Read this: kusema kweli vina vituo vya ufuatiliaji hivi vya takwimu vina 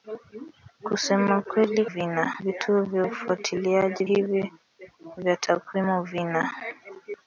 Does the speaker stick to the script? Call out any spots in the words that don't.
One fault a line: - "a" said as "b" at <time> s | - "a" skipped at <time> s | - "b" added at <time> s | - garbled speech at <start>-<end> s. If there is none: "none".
none